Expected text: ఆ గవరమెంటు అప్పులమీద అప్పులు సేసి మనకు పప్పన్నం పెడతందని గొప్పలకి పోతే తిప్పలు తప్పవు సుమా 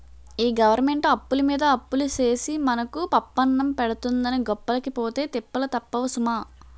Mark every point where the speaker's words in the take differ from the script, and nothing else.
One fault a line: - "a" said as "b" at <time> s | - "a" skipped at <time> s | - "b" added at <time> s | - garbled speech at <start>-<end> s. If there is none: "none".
- "ఆ" said as "ఈ" at 0.4 s